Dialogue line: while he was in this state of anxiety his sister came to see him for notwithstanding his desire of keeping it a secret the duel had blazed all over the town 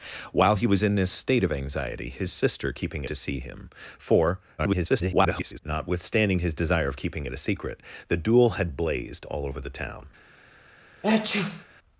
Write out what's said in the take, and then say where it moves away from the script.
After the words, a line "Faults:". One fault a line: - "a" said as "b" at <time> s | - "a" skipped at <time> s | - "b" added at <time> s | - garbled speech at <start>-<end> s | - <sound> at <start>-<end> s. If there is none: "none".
while he was in this state of anxiety his sister keeping to see him for [garbled] notwithstanding his desire of keeping it a secret the duel had blazed all over the town
Faults:
- "came" said as "keeping" at 2.7 s
- garbled speech at 4.6-5.6 s
- sneeze at 11.0-11.6 s